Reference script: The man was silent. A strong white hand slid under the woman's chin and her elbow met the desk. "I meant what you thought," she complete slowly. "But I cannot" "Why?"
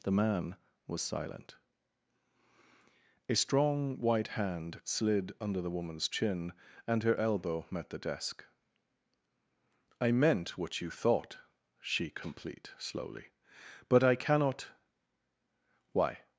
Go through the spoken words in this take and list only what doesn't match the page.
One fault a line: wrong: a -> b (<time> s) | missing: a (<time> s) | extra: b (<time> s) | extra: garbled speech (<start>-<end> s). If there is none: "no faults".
no faults